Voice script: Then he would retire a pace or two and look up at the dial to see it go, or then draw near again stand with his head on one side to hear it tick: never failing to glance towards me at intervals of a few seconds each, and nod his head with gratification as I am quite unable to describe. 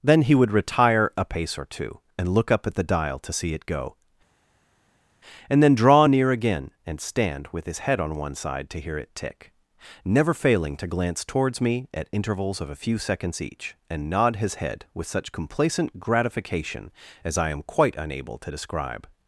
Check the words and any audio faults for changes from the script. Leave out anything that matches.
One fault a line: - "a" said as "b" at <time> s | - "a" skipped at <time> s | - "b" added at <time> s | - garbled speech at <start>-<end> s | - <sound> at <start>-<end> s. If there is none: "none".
- "or" said as "and" at 5.5 s
- "and" added at 6.9 s
- "such complacent" added at 15.1 s